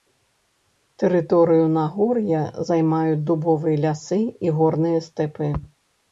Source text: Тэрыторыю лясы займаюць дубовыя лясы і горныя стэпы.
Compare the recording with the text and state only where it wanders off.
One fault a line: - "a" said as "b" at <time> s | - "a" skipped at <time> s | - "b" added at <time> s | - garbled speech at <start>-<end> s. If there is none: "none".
- "лясы" said as "нагор'я" at 1.7 s